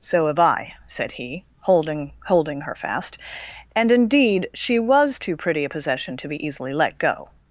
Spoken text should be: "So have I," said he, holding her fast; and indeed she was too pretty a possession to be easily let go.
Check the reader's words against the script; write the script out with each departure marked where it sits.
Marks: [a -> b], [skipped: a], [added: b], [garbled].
"So have I," said he, holding [added: holding] her fast; and indeed she was too pretty a possession to be easily let go.